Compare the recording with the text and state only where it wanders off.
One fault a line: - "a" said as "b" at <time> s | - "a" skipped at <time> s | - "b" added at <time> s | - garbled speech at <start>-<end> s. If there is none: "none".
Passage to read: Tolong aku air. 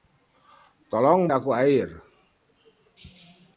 none